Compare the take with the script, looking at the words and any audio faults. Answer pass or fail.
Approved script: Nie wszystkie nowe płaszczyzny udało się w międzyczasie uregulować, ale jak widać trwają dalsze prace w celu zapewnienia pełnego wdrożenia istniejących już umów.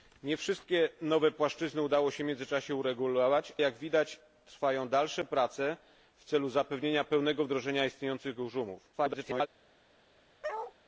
fail